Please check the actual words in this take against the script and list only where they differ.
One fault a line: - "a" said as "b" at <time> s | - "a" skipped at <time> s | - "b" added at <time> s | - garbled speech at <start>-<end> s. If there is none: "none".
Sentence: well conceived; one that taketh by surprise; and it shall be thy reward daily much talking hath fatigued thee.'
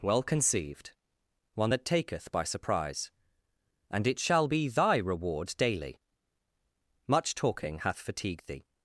none